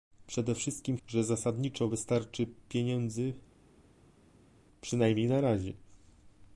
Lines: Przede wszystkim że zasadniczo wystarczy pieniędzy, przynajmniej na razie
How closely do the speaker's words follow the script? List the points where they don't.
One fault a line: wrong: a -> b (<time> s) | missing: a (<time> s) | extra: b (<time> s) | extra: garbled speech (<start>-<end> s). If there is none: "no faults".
no faults